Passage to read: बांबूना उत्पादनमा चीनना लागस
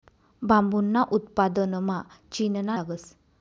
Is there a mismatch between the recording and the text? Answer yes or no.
no